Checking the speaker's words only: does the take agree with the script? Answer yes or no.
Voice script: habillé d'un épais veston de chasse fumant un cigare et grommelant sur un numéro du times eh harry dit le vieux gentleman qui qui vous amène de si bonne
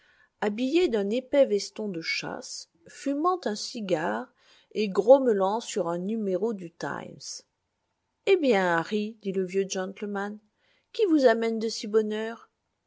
no